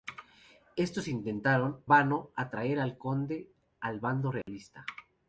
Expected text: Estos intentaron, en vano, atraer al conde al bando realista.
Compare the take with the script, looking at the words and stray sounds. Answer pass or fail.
fail